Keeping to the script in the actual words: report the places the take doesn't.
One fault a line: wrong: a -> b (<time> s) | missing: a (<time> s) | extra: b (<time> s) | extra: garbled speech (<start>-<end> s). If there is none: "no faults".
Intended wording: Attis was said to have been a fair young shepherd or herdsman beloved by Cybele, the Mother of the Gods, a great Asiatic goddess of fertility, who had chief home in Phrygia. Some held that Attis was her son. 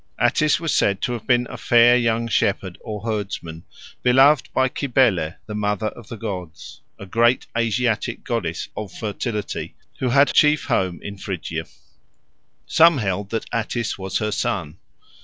no faults